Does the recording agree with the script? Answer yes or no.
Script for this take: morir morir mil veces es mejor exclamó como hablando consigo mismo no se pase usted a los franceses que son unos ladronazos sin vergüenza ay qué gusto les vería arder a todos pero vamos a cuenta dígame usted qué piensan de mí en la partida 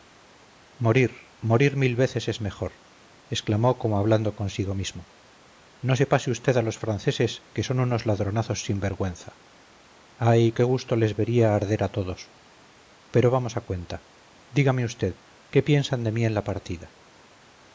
yes